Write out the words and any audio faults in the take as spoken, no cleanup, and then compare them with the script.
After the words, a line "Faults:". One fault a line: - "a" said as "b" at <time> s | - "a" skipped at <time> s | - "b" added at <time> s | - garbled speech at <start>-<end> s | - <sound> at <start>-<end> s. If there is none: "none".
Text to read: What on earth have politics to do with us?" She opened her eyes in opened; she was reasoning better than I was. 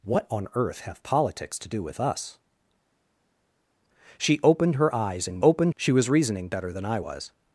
What on earth have politics to do with us?" She opened her eyes in opened; she was reasoning better than I was.
Faults:
none